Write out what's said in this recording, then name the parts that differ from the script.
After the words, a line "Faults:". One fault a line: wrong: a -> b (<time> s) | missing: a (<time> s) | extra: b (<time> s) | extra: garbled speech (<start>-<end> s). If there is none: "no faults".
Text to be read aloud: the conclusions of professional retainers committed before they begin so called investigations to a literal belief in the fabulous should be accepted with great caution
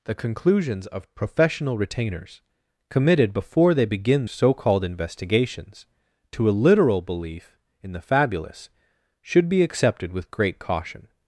the conclusions of professional retainers committed before they begin so called investigations to a literal belief in the fabulous should be accepted with great caution
Faults:
no faults